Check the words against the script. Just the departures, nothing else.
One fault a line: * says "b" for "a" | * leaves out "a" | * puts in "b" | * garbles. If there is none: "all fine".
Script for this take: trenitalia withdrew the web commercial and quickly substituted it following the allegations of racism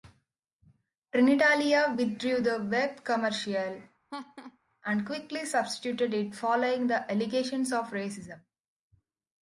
all fine